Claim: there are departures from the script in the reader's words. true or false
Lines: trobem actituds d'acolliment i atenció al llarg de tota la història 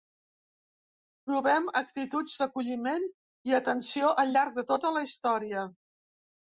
false